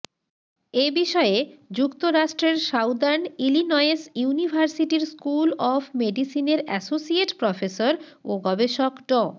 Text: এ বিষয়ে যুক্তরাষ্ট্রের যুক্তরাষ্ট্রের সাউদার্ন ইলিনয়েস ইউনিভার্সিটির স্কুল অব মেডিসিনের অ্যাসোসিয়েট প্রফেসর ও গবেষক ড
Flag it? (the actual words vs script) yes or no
yes